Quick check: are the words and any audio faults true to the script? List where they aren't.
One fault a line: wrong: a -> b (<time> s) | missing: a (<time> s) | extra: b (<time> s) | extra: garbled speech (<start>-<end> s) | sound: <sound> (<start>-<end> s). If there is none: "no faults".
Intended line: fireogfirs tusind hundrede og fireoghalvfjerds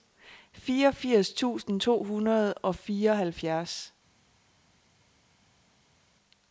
extra: to (1.8 s)